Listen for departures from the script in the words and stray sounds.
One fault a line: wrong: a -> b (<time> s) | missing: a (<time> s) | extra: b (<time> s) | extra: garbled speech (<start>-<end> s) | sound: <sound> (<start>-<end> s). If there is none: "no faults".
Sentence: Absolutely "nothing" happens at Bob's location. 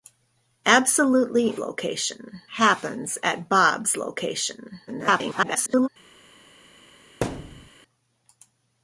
wrong: nothing -> location (1.6 s)
extra: garbled speech (4.9-5.9 s)
sound: thud (7.2-7.7 s)